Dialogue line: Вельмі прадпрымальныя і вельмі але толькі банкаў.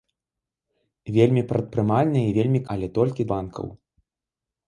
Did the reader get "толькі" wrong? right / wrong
right